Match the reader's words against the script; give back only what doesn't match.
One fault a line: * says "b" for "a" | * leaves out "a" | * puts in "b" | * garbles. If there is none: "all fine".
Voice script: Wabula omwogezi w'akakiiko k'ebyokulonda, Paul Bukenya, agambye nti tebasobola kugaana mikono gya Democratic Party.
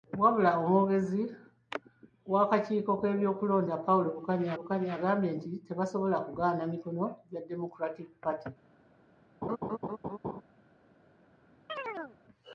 * puts in "Bukenya"